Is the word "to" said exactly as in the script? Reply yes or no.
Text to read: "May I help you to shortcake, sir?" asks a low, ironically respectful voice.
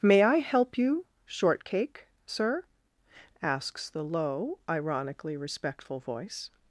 no